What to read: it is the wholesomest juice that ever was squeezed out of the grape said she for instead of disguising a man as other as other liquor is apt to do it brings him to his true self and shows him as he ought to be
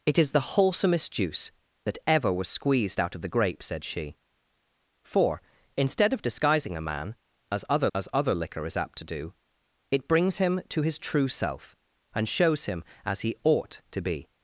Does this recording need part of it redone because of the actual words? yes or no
no